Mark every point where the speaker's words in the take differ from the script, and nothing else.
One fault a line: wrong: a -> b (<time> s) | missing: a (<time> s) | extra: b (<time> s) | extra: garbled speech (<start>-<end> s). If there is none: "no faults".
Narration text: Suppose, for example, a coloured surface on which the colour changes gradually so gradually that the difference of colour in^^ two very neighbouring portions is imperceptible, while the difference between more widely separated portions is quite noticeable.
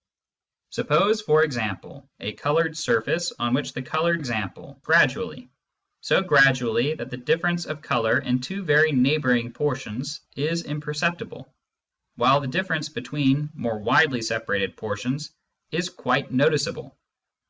wrong: changes -> example (4.2 s)